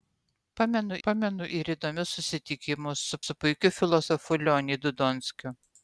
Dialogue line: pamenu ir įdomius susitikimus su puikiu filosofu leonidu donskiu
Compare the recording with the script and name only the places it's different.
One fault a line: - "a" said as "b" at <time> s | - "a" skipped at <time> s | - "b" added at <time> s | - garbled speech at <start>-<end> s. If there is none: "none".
- "pamenu" added at 1.1 s
- "su" added at 3.3 s